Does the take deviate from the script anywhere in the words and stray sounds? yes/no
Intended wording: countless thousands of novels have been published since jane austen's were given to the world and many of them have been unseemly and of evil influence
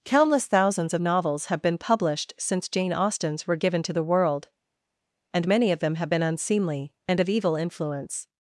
no